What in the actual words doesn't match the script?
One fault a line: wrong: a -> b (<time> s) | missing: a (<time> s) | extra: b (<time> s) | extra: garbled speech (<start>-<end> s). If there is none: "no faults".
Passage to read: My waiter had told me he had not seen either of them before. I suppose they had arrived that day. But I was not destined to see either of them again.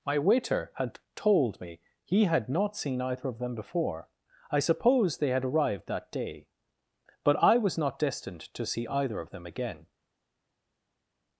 no faults